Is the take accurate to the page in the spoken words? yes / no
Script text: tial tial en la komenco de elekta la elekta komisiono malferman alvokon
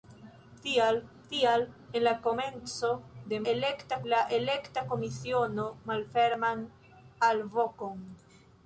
yes